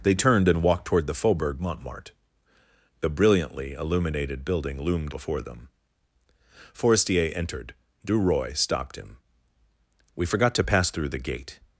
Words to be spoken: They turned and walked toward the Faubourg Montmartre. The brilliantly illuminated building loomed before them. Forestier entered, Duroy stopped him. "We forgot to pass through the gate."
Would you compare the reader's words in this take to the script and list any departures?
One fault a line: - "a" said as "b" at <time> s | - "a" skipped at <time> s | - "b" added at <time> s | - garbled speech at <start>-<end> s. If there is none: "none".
none